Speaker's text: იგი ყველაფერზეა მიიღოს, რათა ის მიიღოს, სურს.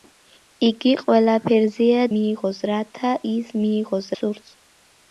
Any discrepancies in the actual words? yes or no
no